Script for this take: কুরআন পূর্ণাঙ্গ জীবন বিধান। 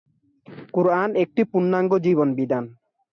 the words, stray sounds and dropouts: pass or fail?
fail